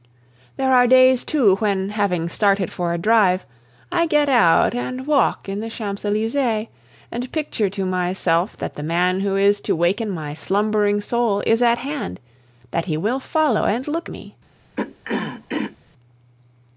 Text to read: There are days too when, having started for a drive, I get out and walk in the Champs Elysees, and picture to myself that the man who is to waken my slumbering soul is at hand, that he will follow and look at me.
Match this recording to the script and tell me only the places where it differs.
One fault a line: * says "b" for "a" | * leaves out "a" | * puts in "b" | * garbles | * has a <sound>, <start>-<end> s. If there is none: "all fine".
* leaves out "at"
* has a throat clearing, 14.8-15.8 s